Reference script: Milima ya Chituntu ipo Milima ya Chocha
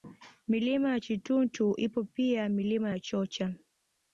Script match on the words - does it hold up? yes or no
no